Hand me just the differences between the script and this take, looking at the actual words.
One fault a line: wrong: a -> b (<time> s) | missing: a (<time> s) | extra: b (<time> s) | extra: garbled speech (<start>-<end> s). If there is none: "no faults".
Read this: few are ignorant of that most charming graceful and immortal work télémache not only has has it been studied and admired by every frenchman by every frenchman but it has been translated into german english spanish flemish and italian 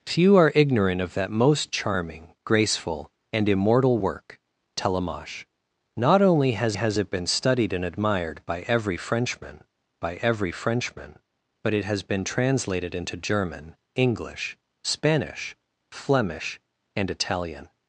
no faults